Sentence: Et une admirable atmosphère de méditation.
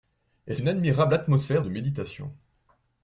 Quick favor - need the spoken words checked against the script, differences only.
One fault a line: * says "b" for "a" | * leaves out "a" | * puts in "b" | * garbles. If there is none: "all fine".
all fine